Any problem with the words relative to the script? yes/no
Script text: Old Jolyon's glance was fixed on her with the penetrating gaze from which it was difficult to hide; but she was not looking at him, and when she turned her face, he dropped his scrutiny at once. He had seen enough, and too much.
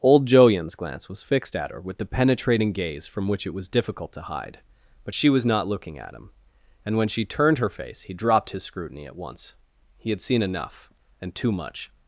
yes